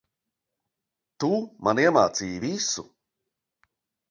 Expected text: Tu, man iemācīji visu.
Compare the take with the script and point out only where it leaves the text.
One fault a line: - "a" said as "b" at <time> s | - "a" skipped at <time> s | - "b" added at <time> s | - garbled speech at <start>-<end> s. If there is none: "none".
none